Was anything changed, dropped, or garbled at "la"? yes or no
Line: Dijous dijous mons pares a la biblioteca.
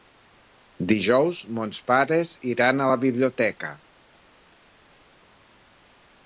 no